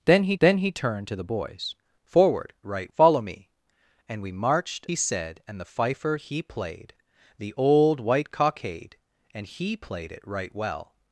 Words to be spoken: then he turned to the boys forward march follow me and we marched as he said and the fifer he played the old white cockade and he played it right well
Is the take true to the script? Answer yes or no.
no